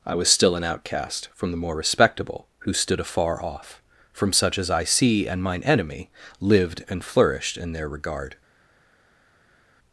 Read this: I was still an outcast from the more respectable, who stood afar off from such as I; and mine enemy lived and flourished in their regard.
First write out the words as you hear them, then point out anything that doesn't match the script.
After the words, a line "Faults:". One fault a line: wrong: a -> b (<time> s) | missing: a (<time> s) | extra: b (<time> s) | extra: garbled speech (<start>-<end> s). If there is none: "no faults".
I was still an outcast from the more respectable, who stood afar off from such as I; see and mine enemy lived and flourished in their regard.
Faults:
extra: see (4.8 s)